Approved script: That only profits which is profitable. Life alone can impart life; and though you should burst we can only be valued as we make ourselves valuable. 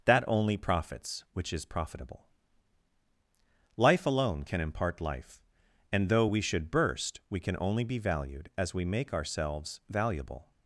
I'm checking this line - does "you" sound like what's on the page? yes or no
no